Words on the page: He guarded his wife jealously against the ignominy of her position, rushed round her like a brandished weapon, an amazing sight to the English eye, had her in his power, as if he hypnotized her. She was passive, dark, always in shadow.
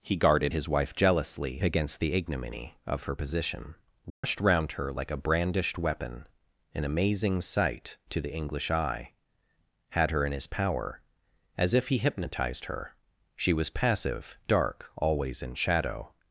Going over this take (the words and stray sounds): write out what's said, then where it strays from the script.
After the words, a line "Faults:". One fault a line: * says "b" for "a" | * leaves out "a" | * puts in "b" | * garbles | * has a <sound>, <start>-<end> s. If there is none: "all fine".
He guarded his wife jealously against the ignominy of her position, rushed round her like a brandished weapon, an amazing sight to the English eye, had her in his power, as if he hypnotized her. She was passive, dark, always in shadow.
Faults:
* has a dropout, 4.1-4.2 s